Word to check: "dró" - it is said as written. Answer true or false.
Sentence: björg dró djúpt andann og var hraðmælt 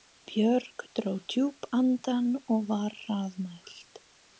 true